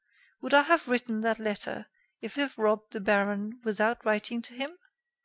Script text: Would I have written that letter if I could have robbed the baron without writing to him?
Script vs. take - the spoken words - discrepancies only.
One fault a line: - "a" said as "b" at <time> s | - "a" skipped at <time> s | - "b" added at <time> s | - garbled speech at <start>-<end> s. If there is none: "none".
- "I could" skipped at 2.4 s